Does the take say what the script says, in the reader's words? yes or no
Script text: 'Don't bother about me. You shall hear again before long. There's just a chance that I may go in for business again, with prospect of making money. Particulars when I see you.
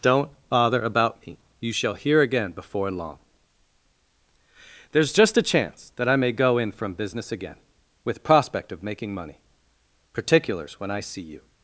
no